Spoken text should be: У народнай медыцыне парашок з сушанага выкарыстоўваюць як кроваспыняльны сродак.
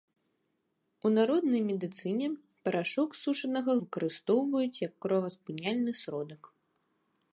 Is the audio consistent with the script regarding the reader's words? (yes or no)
yes